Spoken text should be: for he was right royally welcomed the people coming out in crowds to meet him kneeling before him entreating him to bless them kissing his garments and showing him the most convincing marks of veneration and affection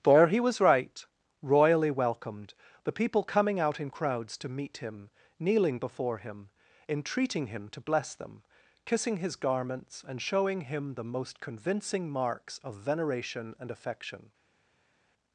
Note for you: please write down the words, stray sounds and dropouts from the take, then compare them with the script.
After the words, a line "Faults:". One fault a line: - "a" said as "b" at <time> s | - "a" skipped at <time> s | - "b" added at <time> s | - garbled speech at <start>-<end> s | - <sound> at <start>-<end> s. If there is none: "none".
for he was right royally welcomed the people coming out in crowds to meet him kneeling before him entreating him to bless them kissing his garments and showing him the most convincing marks of veneration and affection
Faults:
none